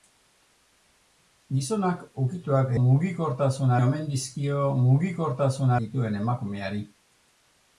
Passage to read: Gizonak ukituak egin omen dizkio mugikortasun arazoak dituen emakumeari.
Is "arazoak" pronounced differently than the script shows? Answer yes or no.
yes